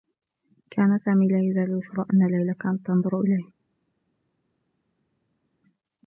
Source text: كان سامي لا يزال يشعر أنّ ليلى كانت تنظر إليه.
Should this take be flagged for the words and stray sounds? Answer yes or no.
no